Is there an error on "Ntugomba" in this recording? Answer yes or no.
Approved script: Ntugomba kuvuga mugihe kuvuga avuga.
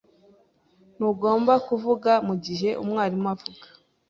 no